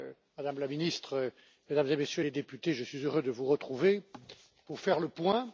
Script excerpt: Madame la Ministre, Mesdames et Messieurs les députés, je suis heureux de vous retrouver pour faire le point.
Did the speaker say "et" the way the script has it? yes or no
yes